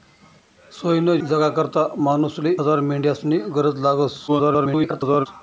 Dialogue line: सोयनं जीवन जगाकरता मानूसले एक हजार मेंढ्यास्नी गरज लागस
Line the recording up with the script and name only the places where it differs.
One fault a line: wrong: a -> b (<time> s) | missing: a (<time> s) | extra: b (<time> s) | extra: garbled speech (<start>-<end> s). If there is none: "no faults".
missing: जीवन (1.2 s)
missing: एक (2.5 s)
extra: garbled speech (4.3-5.3 s)